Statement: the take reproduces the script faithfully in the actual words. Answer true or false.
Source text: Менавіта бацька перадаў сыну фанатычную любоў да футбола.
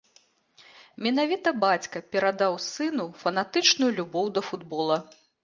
true